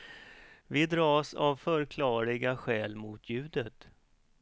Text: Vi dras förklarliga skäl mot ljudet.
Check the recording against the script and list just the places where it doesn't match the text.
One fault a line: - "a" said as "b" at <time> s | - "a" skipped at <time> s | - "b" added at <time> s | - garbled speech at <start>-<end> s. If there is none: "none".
- "av" added at 1.3 s